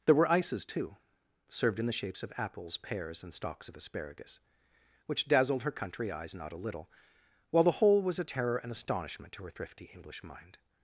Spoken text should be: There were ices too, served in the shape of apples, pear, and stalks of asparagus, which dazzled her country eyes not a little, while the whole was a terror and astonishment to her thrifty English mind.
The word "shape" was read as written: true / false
false